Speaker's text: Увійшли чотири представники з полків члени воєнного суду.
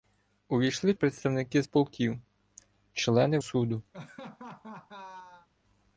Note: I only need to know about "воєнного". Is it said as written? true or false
false